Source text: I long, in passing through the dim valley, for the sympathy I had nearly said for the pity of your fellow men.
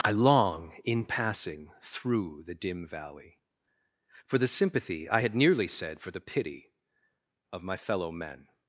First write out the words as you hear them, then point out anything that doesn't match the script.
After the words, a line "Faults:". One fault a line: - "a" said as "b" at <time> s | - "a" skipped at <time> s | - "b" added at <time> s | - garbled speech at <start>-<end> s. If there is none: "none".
I long, in passing through the dim valley, for the sympathy I had nearly said for the pity of my fellow men.
Faults:
- "your" said as "my" at 7.6 s